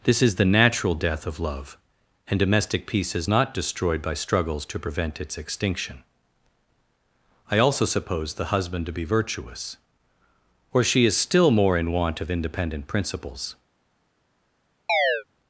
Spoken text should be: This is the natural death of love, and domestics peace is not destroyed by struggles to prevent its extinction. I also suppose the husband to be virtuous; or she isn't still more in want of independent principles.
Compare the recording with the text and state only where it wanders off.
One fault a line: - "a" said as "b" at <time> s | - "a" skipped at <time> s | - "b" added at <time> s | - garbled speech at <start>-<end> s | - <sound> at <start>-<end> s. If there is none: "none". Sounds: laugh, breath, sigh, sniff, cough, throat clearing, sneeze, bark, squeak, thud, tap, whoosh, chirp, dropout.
- "domestics" said as "domestic" at 2.4 s
- "isn't" said as "is" at 11.0 s
- chirp at 14.9-15.2 s